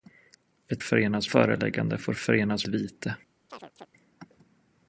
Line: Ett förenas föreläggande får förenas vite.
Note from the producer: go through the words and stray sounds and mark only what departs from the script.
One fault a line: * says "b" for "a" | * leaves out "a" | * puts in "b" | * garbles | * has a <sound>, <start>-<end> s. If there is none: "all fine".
* has a chirp, 3.5-3.9 s